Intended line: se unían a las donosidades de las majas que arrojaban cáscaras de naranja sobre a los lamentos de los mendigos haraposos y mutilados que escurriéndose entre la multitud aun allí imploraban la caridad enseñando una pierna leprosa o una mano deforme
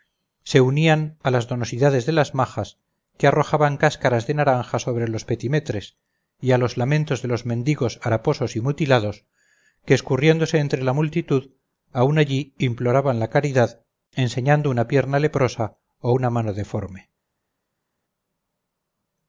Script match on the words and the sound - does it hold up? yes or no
no